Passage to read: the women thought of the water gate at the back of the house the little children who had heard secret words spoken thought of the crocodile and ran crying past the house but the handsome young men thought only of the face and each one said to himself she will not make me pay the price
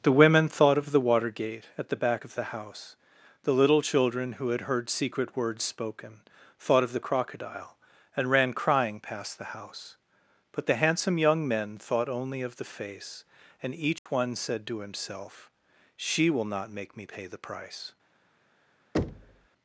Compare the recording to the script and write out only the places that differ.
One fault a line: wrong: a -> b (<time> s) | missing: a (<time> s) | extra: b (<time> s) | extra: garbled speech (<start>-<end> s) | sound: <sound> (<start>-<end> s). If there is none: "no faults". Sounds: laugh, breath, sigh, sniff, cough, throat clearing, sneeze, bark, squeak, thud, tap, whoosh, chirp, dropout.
sound: dropout (14.0-14.1 s)
sound: thud (18.9-19.5 s)